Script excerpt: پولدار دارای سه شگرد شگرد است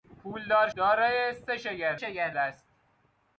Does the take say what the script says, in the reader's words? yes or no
yes